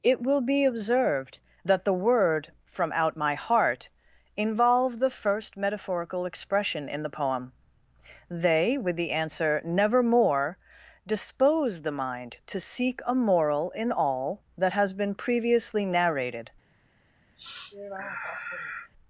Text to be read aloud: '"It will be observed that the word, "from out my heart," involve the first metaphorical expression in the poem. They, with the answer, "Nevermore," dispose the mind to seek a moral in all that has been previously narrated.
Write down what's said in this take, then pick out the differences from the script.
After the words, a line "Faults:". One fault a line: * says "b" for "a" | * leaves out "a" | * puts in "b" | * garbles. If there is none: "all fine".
'"It will be observed that the word, "from out my heart," involve the first metaphorical expression in the poem. They, with the answer, "Nevermore," dispose the mind to seek a moral in all that has been previously narrated.
Faults:
all fine